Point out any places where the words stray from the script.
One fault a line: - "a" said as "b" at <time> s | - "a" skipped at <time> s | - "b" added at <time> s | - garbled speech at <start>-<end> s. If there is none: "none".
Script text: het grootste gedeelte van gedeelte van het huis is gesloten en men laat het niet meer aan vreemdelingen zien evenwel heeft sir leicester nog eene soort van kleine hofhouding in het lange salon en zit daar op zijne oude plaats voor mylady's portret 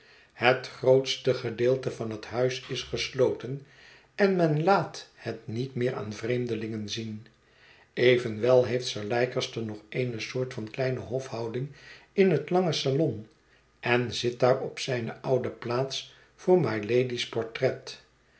- "gedeelte van" skipped at 2.1 s